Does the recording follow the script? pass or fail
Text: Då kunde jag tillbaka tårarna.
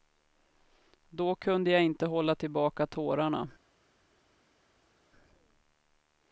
fail